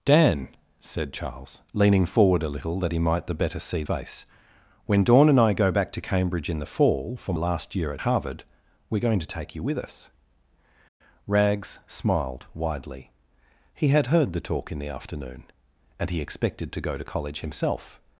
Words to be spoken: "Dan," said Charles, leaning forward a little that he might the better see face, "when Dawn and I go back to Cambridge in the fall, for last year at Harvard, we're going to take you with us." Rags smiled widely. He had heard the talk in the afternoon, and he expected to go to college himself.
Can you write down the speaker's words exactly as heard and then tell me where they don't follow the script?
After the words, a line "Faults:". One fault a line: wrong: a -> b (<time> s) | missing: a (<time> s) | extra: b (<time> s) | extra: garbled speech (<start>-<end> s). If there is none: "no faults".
"Dan," said Charles, leaning forward a little that he might the better see face, "when Dawn and I go back to Cambridge in the fall, for last year at Harvard, we're going to take you with us." Rags smiled widely. He had heard the talk in the afternoon, and he expected to go to college himself.
Faults:
no faults